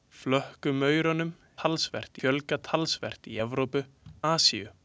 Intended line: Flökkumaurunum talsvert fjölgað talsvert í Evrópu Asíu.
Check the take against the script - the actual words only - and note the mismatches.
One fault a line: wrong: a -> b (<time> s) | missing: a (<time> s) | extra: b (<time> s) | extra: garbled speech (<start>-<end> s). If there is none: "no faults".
no faults